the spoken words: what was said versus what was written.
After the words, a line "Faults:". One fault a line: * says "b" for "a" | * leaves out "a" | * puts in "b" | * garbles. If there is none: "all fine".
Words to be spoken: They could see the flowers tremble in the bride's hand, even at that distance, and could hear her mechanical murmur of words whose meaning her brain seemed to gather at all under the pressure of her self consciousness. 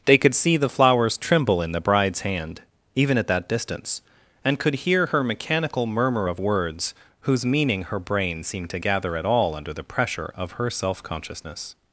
They could see the flowers tremble in the bride's hand, even at that distance, and could hear her mechanical murmur of words whose meaning her brain seemed to gather at all under the pressure of her self consciousness.
Faults:
all fine